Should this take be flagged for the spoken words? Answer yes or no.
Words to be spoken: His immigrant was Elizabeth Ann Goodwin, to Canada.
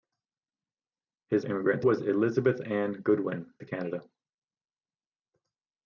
no